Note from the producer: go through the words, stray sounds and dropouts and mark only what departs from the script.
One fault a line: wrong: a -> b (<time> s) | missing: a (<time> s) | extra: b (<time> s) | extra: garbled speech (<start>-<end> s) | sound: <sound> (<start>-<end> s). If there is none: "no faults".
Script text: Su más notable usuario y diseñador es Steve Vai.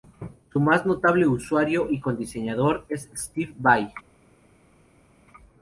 extra: co (2.0 s)